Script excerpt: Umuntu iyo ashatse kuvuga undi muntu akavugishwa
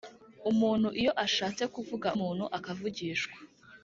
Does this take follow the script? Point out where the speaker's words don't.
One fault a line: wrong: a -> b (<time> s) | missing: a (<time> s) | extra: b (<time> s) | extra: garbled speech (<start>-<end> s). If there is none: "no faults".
missing: undi (2.1 s)